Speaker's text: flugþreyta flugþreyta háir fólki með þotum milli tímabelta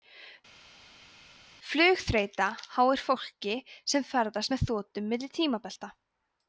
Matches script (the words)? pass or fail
fail